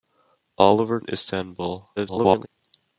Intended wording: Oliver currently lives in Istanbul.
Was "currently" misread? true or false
true